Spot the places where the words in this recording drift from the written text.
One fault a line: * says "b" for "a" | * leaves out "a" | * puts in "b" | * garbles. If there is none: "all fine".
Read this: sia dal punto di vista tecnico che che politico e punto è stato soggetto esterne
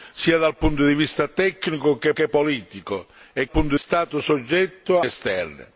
all fine